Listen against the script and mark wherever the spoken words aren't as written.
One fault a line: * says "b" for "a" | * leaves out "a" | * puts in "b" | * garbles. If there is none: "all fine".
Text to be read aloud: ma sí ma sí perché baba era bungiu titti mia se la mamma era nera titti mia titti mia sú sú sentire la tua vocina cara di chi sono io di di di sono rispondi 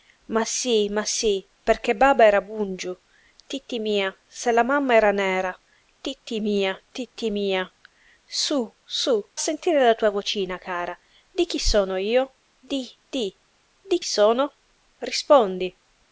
all fine